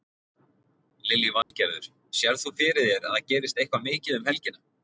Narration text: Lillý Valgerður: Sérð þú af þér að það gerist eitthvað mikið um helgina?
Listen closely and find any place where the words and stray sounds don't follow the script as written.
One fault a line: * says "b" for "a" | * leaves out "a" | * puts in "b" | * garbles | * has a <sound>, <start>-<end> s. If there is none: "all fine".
* has a dropout, 1.4-1.5 s
* says "fyrir" for "af"